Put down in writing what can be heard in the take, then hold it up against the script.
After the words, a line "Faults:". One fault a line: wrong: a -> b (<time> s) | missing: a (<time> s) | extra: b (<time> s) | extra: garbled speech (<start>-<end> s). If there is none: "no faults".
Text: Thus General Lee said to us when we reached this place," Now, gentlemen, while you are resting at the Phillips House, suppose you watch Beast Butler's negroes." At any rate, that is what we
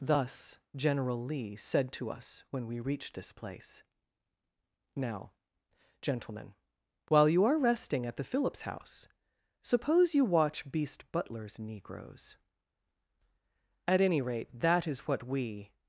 Thus General Lee said to us when we reached this place," Now, gentlemen, while you are resting at the Phillips House, suppose you watch Beast Butler's negroes." At any rate, that is what we
Faults:
no faults